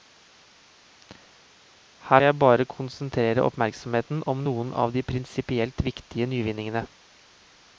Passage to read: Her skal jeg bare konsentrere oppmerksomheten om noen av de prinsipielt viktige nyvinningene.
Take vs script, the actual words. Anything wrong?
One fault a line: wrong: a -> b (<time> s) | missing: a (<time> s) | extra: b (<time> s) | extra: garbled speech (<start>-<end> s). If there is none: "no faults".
missing: skal (2.2 s)